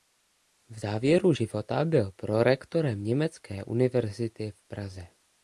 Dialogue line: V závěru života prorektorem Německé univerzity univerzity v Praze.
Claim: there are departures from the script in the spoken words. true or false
true